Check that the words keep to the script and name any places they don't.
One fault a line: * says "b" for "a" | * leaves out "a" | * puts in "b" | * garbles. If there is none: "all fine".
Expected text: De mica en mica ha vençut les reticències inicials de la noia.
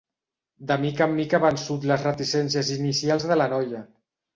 all fine